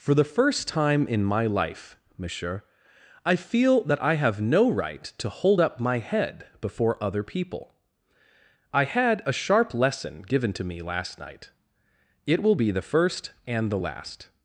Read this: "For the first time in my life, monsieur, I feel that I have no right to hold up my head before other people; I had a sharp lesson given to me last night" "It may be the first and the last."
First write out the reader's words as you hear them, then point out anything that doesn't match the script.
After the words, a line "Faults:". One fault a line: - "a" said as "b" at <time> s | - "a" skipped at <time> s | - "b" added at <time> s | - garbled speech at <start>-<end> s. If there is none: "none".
"For the first time in my life, monsieur, I feel that I have no right to hold up my head before other people; I had a sharp lesson given to me last night" "It will be the first and the last."
Faults:
- "may" said as "will" at 12.4 s